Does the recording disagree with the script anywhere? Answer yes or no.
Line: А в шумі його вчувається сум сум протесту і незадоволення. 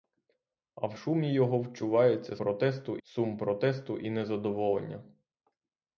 yes